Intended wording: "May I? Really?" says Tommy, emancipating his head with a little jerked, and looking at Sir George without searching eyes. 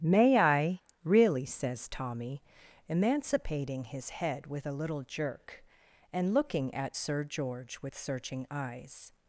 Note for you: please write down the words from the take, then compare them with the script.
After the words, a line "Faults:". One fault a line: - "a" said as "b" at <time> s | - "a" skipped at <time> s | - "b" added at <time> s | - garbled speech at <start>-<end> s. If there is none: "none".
"May I? Really?" says Tommy, emancipating his head with a little jerk, and looking at Sir George with searching eyes.
Faults:
- "jerked" said as "jerk" at 5.0 s
- "without" said as "with" at 7.8 s